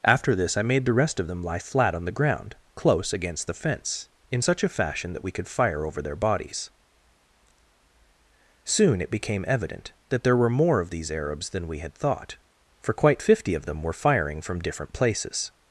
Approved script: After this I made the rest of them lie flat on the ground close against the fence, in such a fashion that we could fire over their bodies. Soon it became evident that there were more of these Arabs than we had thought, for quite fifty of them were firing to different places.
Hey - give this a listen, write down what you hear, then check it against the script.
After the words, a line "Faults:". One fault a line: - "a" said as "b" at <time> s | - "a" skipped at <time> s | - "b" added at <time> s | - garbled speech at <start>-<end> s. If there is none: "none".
After this I made the rest of them lie flat on the ground close against the fence, in such a fashion that we could fire over their bodies. Soon it became evident that there were more of these Arabs than we had thought, for quite fifty of them were firing from different places.
Faults:
- "to" said as "from" at 14.4 s